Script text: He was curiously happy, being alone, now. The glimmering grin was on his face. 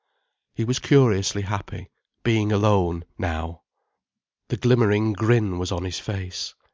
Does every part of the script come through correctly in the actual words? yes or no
yes